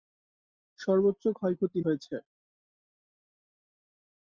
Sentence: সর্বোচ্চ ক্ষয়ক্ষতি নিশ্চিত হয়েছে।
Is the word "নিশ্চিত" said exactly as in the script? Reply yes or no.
no